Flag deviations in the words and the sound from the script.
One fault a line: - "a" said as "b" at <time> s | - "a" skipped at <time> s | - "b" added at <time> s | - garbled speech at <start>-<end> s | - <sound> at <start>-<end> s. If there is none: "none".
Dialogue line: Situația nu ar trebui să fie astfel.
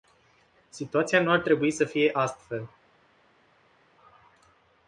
none